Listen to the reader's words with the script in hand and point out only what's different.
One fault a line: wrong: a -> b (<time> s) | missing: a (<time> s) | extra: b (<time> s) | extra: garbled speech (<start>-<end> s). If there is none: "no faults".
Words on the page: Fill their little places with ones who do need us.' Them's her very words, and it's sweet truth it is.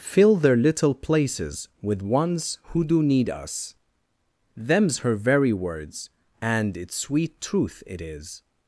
no faults